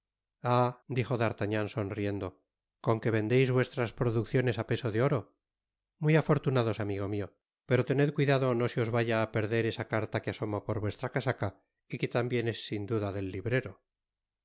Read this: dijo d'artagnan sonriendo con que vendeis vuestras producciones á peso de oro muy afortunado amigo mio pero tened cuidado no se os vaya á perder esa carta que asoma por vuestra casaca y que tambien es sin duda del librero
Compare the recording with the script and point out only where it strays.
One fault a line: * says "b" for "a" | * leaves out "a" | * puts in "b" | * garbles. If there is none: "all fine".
all fine